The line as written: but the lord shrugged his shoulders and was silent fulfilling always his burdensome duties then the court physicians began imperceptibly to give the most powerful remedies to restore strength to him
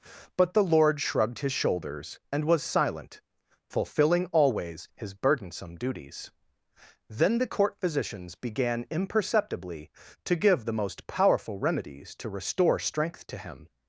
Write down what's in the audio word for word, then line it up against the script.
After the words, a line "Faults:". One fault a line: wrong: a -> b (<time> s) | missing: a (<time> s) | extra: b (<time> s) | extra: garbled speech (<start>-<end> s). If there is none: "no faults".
but the lord shrugged his shoulders and was silent fulfilling always his burdensome duties then the court physicians began imperceptibly to give the most powerful remedies to restore strength to him
Faults:
no faults